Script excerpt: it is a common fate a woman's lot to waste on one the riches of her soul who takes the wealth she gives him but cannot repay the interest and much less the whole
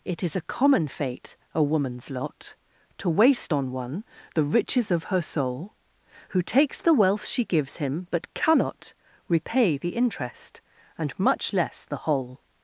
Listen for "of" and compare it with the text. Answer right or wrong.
right